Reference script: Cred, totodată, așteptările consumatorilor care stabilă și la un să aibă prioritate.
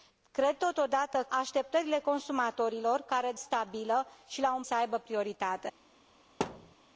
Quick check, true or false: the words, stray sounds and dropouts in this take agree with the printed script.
false